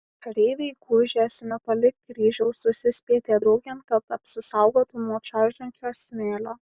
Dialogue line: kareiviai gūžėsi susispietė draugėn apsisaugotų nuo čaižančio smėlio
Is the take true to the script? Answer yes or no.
no